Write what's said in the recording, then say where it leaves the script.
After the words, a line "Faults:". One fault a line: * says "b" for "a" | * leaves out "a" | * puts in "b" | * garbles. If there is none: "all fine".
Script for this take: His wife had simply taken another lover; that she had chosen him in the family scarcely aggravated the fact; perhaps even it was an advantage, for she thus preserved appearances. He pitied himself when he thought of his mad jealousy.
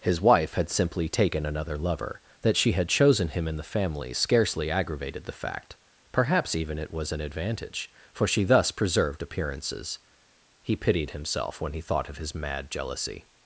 His wife had simply taken another lover; that she had chosen him in the family scarcely aggravated the fact; perhaps even it was an advantage, for she thus preserved appearances. He pitied himself when he thought of his mad jealousy.
Faults:
all fine